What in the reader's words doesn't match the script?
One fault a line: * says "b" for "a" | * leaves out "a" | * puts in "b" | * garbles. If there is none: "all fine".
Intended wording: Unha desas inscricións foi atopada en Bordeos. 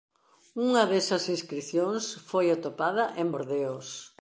all fine